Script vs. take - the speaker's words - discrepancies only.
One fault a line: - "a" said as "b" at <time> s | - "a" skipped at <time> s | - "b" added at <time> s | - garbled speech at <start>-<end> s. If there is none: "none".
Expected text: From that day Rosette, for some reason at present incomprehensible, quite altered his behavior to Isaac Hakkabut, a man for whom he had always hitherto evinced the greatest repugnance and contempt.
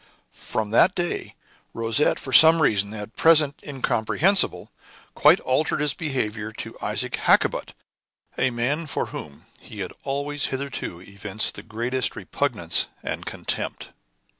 none